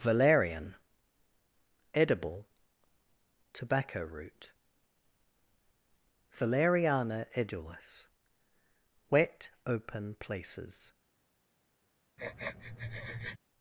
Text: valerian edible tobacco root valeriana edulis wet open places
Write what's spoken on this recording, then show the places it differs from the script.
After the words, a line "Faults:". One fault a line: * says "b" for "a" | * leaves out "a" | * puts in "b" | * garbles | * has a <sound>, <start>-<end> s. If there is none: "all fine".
valerian edible tobacco root valeriana edulis wet open places
Faults:
* has a sniff, 12.2-13.4 s